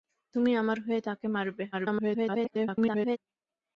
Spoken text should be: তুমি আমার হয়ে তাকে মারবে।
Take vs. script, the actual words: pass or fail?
fail